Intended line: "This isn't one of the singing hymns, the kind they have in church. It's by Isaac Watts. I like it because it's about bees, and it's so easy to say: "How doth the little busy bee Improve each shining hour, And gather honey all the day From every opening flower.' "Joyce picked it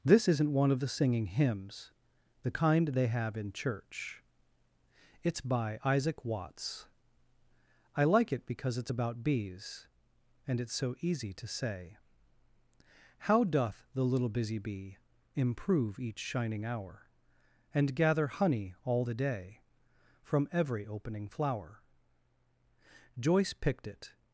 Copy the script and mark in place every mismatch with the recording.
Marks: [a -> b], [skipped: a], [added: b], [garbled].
"This isn't one of the singing hymns, the kind they have in church. It's by Isaac Watts. I like it because it's about bees, and it's so easy to say: "How doth the little busy bee Improve each shining hour, And gather honey all the day From every opening flower.' "Joyce picked it